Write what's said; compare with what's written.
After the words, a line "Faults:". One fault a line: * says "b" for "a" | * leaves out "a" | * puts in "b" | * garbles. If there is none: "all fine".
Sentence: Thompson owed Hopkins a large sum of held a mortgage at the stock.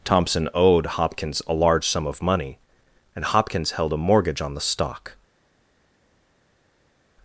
Thompson owed Hopkins a large sum of money and Hopkins held a mortgage on the stock.
Faults:
* puts in "money and Hopkins"
* says "on" for "at"